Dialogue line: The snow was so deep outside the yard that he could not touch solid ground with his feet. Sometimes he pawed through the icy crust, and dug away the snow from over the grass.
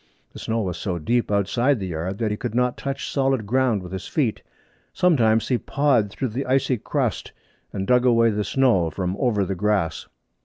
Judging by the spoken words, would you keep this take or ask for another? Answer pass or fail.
pass